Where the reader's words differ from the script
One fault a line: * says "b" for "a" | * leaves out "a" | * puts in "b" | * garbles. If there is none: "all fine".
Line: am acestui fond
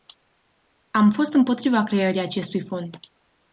* puts in "fost împotriva creării"